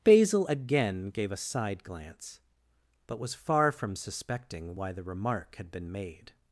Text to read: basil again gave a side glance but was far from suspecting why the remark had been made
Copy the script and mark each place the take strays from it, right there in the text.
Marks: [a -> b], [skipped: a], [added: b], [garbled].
basil again gave a side glance but was far from suspecting why the remark had been made